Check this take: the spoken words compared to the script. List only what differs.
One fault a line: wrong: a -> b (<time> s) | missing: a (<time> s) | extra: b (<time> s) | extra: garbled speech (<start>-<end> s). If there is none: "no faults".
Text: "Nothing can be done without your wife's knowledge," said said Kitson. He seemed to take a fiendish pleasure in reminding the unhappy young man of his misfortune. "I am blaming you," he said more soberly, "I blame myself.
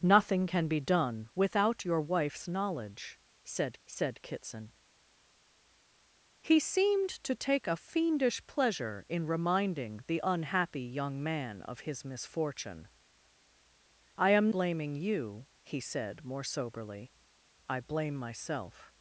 no faults